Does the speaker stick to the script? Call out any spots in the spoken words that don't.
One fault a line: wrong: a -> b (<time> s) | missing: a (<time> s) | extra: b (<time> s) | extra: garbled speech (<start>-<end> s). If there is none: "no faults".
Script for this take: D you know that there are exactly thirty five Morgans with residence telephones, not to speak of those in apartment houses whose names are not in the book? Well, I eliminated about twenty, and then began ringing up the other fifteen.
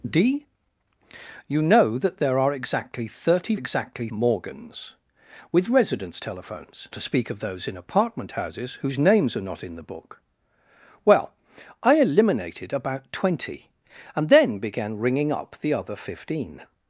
wrong: five -> exactly (3.5 s)
missing: not (6.9 s)